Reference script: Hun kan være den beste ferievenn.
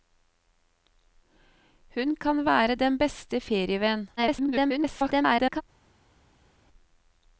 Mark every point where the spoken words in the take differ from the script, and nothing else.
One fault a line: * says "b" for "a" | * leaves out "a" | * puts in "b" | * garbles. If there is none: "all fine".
* garbles